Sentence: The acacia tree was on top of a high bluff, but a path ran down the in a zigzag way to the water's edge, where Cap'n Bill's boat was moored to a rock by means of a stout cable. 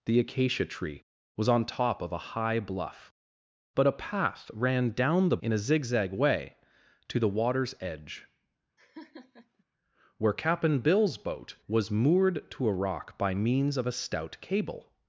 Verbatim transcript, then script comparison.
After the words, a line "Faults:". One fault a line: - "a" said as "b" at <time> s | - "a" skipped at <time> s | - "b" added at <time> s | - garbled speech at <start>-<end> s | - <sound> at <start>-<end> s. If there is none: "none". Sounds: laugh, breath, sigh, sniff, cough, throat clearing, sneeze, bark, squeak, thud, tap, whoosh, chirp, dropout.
The acacia tree was on top of a high bluff, but a path ran down the in a zigzag way to the water's edge, where Cap'n Bill's boat was moored to a rock by means of a stout cable.
Faults:
- laugh at 8.8-9.6 s